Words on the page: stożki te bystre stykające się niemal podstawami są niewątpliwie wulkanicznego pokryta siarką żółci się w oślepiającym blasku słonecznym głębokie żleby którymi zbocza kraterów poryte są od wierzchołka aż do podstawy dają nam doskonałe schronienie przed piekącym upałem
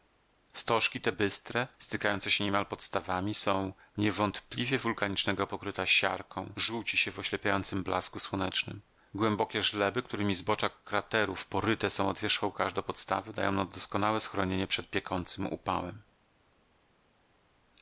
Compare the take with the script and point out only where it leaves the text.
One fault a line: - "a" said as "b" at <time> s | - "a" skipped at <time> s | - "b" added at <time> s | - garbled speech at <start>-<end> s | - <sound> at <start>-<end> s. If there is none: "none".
none